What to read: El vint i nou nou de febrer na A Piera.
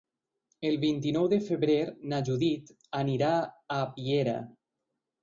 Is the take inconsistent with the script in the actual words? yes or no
yes